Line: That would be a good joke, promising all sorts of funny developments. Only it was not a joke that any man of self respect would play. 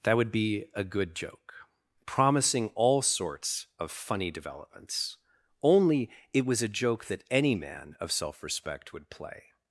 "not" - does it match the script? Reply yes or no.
no